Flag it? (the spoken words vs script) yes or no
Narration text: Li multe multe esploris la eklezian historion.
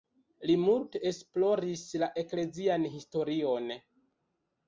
yes